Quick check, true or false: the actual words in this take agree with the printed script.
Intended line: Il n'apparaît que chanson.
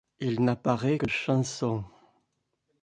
true